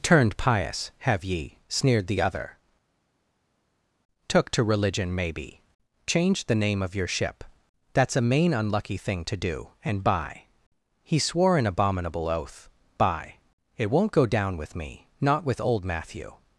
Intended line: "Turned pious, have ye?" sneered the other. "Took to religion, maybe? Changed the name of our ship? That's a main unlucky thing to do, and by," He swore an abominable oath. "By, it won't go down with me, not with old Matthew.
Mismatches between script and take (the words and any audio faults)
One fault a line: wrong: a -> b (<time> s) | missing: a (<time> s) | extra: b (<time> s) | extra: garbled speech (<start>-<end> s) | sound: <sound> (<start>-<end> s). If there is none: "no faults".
wrong: our -> your (6.9 s)